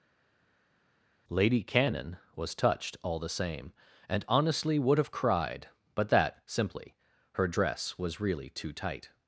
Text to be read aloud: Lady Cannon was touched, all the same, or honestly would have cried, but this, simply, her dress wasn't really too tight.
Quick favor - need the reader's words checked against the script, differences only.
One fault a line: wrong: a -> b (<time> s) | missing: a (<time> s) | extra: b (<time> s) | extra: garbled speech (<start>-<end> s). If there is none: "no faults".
wrong: or -> and (4.1 s)
wrong: this -> that (6.1 s)
wrong: wasn't -> was (8.0 s)